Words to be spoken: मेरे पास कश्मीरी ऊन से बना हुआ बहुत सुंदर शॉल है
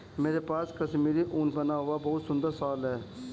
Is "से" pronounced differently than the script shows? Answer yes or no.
yes